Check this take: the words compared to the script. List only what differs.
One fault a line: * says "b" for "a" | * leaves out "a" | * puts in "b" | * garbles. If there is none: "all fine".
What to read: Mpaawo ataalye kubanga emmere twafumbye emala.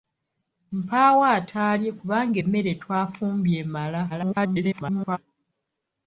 * garbles